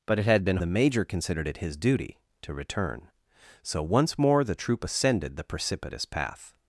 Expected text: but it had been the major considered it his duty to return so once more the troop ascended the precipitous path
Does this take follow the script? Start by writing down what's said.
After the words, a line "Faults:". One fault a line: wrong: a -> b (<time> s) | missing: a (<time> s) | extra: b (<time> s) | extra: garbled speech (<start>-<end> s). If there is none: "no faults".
but it had been the major considered it his duty to return so once more the troop ascended the precipitous path
Faults:
no faults